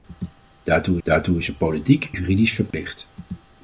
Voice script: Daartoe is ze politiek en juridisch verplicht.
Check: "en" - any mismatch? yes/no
yes